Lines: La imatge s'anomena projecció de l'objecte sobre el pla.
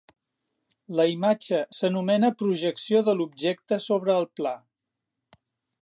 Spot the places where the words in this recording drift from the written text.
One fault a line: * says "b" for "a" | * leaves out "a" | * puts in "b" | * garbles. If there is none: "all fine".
all fine